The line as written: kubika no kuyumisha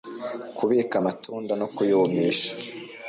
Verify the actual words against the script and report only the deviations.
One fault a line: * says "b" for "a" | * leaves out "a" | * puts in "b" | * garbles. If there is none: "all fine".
* puts in "amatunda"